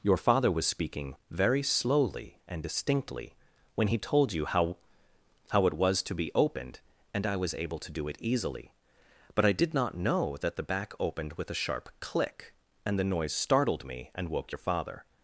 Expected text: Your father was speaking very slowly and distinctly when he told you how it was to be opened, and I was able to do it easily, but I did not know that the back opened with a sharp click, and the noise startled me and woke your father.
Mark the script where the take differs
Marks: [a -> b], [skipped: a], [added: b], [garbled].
Your father was speaking very slowly and distinctly when he told you how [added: how] it was to be opened, and I was able to do it easily, but I did not know that the back opened with a sharp click, and the noise startled me and woke your father.